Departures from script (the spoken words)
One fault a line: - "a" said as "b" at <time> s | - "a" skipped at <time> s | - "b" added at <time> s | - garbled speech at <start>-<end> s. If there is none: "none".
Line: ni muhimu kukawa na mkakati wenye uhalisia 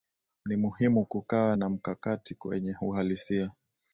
none